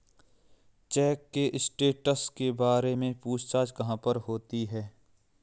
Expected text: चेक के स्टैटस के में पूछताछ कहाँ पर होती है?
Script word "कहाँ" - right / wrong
right